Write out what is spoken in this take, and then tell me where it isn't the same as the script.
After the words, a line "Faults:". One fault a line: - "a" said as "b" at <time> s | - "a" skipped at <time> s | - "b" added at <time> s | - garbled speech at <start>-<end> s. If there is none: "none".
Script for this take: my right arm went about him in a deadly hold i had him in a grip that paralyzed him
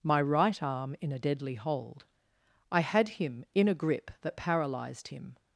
my right arm in a deadly hold i had him in a grip that paralyzed him
Faults:
- "went about him" skipped at 0.9 s